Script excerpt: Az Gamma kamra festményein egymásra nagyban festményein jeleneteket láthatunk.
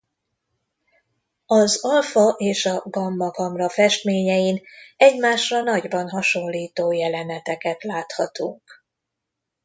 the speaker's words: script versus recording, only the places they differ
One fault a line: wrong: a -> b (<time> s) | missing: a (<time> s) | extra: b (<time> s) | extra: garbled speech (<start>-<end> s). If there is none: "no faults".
extra: Alfa és a (1.8 s)
wrong: festményein -> hasonlító (6.1 s)